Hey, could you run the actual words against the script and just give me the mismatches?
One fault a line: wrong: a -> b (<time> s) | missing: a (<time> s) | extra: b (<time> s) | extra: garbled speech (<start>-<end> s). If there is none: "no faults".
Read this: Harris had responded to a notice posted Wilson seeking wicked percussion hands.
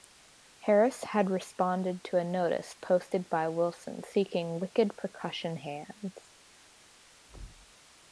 extra: by (3.3 s)